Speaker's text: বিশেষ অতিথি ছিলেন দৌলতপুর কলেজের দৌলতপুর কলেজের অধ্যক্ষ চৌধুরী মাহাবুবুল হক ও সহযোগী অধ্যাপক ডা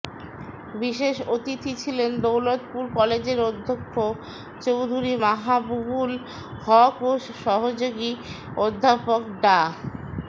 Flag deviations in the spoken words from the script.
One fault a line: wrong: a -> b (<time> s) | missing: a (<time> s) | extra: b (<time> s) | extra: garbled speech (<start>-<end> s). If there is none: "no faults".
missing: দৌলতপুর কলেজের (3.4 s)